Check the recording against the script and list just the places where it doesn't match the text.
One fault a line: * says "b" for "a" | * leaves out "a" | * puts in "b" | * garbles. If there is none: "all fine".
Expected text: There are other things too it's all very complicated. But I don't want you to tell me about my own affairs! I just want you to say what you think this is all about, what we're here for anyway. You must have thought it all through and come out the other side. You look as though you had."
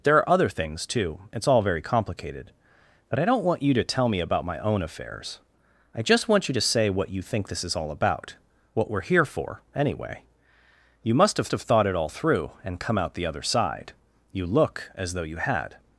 * puts in "have"